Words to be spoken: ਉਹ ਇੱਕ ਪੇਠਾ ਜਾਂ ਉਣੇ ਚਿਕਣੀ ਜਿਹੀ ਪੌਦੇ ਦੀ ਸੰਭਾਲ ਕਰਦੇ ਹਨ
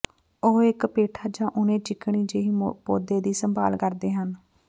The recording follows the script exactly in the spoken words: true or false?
true